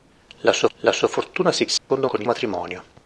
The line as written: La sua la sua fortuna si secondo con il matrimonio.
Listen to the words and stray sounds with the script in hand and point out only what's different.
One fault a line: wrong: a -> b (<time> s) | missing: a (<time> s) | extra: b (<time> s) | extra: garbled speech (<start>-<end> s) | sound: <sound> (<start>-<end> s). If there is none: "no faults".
sound: dropout (1.8-1.9 s)